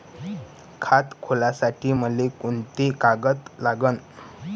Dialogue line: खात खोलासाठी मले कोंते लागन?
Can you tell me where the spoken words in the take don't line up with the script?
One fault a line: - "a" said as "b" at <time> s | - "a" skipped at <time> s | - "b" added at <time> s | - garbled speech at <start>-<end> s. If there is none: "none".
- "कागद" added at 3.0 s